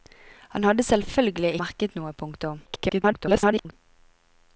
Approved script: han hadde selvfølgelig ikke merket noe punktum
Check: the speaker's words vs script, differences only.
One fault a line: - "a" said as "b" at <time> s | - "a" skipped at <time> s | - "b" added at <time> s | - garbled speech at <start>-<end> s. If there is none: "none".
- "ikke" skipped at 1.5 s
- garbled speech at 2.7-3.7 s